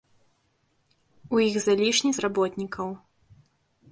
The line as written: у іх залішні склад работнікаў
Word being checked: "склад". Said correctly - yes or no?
no